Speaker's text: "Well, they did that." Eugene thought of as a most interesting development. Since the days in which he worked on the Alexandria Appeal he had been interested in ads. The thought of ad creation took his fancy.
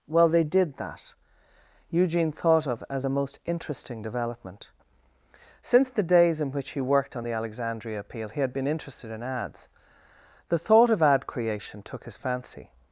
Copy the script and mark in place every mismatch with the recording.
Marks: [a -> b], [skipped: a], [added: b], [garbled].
"Well, they did that." Eugene thought of as a most interesting development. Since the days in which he worked on the Alexandria Appeal he had been interested in ads. The thought of ad creation took his fancy.